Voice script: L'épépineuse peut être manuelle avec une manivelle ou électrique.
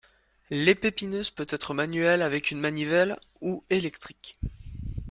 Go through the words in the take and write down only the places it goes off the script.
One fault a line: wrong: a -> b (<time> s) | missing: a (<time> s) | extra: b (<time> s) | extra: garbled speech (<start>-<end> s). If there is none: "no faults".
no faults